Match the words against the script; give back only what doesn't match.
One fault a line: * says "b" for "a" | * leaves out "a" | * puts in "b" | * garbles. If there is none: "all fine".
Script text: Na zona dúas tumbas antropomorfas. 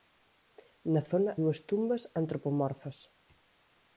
all fine